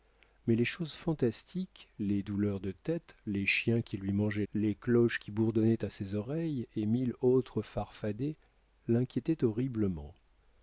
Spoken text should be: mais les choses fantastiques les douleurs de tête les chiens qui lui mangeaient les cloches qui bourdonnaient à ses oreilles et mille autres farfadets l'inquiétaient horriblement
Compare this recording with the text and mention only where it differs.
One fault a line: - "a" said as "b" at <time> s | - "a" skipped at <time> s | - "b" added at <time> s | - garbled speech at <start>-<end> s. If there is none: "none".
none